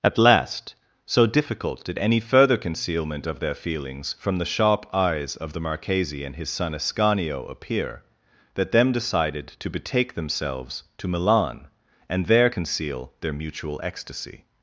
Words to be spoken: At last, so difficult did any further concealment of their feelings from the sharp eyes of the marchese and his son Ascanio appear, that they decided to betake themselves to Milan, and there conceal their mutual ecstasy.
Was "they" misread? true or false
true